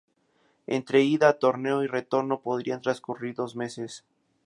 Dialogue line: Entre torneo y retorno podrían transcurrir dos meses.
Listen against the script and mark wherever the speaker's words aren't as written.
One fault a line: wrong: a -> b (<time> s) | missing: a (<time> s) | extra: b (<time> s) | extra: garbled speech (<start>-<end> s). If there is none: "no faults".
extra: ida (1.0 s)